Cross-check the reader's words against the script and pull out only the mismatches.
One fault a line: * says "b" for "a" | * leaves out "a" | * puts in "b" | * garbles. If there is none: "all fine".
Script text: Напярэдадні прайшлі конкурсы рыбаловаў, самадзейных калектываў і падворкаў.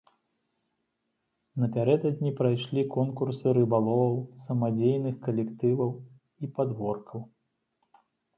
all fine